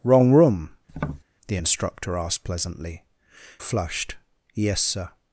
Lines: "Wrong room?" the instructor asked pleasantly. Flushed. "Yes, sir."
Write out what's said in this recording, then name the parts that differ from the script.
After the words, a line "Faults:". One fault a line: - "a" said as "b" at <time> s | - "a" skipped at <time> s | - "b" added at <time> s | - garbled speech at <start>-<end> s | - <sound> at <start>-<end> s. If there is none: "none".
"Wrong room?" the instructor asked pleasantly. Flushed. "Yes, sir."
Faults:
- tap at 0.9-1.2 s